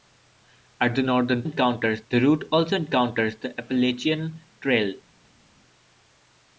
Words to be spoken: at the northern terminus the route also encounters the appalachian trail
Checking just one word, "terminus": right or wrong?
wrong